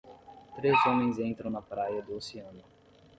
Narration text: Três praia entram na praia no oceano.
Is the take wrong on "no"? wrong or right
wrong